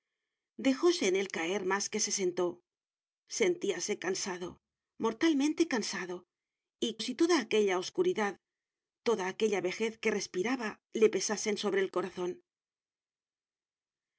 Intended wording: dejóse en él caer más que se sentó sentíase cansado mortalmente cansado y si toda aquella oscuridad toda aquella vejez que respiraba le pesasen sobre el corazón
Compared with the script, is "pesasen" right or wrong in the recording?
right